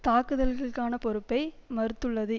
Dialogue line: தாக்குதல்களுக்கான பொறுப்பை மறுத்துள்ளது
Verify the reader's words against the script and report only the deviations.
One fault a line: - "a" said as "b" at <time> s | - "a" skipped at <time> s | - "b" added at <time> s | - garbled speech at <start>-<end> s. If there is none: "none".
none